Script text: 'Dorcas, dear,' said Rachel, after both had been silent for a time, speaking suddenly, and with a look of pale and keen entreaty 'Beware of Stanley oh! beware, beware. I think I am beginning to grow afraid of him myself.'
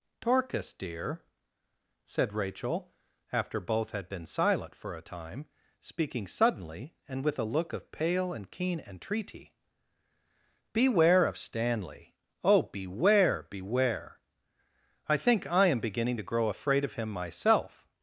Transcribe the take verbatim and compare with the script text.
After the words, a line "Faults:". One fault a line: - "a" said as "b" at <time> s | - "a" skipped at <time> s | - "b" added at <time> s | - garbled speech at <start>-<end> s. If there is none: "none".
'Dorcas, dear,' said Rachel, after both had been silent for a time, speaking suddenly, and with a look of pale and keen entreaty 'Beware of Stanley oh! beware, beware. I think I am beginning to grow afraid of him myself.'
Faults:
none